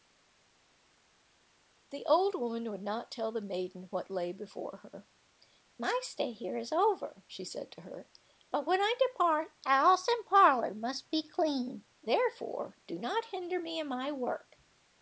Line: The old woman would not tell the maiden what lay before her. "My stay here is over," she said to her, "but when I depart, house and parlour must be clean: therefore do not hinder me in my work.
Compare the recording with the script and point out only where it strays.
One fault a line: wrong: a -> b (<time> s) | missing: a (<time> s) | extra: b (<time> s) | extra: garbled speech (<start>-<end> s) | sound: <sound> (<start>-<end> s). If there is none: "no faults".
no faults